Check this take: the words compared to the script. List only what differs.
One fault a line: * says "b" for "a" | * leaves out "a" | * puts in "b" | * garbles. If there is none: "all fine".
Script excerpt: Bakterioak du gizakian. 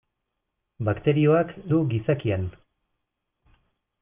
all fine